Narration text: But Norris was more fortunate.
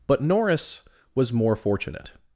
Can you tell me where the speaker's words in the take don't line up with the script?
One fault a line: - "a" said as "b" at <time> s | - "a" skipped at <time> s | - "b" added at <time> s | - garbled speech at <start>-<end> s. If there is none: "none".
none